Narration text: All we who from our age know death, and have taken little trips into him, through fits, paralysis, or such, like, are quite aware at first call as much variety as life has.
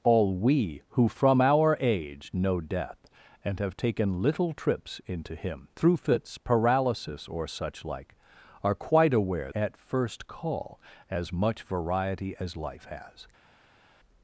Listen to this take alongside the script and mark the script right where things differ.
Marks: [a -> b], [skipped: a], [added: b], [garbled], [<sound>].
All we who from our age know death, and have taken little trips into him, through fits, paralysis, or such, like, are quite aware at first call as much variety as life has.